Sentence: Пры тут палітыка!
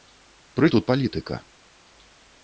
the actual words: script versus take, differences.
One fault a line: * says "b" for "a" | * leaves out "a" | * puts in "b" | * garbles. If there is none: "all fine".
all fine